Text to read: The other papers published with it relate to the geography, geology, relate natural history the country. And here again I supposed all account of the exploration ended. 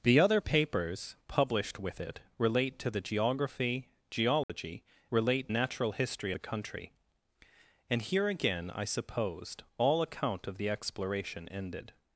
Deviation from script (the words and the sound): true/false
true